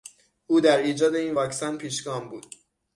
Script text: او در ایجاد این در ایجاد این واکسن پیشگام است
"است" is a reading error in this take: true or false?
true